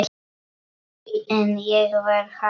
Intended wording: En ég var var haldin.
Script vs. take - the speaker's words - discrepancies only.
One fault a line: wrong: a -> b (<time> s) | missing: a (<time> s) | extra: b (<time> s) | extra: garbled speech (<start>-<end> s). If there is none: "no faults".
missing: var (2.2 s)